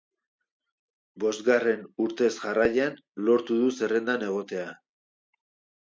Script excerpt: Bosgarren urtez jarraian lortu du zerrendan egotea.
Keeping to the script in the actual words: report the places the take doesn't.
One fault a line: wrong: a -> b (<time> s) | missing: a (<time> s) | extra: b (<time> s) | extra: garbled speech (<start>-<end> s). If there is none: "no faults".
no faults